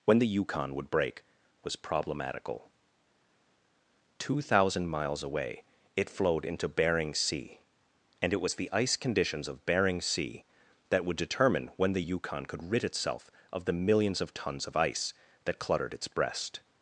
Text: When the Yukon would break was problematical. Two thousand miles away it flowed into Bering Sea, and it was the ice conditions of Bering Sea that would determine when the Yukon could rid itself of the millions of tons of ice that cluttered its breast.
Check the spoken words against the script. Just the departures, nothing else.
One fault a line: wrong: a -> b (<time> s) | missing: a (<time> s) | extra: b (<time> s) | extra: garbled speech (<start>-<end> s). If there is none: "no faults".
no faults